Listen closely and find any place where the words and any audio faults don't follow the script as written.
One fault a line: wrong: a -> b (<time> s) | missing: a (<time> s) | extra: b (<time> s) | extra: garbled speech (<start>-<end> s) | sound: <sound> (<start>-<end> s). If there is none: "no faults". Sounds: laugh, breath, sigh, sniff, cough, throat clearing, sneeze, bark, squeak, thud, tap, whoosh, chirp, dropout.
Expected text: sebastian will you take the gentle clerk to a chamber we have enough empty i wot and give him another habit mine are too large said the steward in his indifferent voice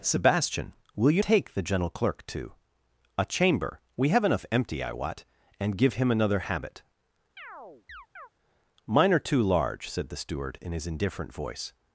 sound: chirp (7.4-8.3 s)